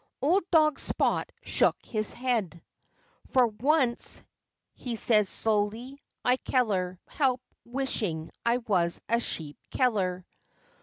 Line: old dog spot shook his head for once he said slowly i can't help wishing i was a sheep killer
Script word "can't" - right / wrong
wrong